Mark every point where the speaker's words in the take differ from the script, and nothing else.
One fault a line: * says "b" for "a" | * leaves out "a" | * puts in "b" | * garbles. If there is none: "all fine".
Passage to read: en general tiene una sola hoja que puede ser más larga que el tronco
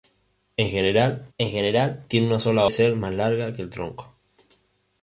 * puts in "en general"
* leaves out "hoja que puede"